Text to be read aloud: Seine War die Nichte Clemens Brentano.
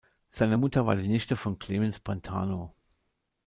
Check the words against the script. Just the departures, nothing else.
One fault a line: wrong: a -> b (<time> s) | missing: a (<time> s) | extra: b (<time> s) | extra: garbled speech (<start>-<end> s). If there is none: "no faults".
extra: Mutter (0.6 s)
extra: von (1.4 s)